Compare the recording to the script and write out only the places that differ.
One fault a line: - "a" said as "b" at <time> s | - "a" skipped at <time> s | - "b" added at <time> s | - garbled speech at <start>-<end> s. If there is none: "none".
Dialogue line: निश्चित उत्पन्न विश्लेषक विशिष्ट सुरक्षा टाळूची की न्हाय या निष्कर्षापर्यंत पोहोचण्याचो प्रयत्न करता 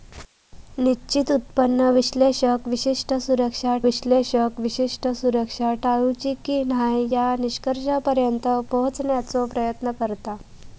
- "विश्लेषक विशिष्ट सुरक्षा" added at 3.8 s